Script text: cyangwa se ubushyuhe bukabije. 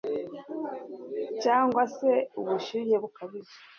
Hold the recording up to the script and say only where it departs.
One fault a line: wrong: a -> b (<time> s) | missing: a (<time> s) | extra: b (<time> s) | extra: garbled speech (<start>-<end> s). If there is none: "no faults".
no faults